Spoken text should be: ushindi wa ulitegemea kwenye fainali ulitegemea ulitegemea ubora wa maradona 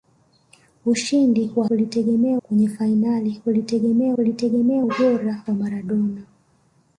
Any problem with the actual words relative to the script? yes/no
no